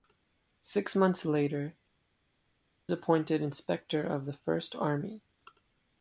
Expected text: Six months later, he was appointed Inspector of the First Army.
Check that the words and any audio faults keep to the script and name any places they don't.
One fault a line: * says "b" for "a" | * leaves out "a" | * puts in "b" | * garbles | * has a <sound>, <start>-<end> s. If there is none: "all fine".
* leaves out "he was"